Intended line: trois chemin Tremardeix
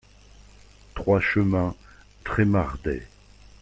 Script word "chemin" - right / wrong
right